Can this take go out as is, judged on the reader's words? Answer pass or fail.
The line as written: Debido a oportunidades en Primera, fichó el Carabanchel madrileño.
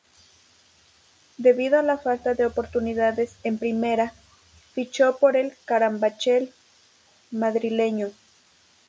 fail